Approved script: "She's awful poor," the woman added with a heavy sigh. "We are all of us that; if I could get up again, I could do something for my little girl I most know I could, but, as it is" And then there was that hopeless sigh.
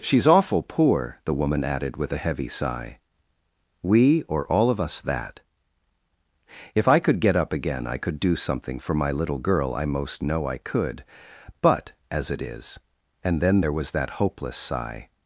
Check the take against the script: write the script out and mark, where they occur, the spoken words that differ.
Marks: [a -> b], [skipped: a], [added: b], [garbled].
"She's awful poor," the woman added with a heavy sigh. "We [are -> or] all of us that; if I could get up again, I could do something for my little girl I most know I could, but, as it is" And then there was that hopeless sigh.